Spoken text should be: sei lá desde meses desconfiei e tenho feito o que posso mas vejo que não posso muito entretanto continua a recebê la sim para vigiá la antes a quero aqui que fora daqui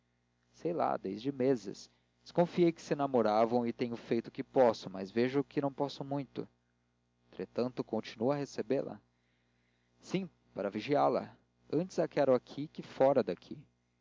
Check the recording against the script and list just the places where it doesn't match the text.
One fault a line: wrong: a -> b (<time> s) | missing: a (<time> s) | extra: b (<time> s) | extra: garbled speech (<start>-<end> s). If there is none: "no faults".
extra: que se namoravam (2.7 s)